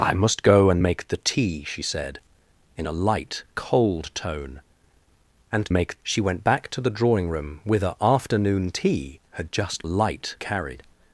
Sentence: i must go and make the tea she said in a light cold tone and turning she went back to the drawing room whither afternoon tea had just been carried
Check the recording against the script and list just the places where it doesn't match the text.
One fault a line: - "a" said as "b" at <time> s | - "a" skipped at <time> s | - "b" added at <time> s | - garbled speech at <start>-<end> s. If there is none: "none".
- "turning" said as "make" at 5.7 s
- "been" said as "light" at 9.8 s